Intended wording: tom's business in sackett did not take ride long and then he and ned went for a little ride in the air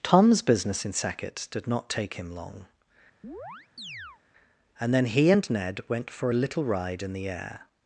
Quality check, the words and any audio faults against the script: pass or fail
fail